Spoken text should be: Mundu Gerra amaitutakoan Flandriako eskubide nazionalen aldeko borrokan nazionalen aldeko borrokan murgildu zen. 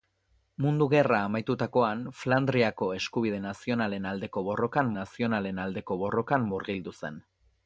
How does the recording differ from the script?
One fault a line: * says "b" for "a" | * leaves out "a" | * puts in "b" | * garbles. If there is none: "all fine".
all fine